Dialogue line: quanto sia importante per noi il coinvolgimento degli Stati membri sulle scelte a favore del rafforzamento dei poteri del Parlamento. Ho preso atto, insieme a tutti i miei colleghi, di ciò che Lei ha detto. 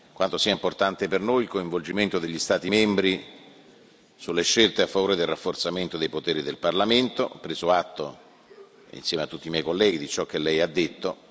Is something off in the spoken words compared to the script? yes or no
no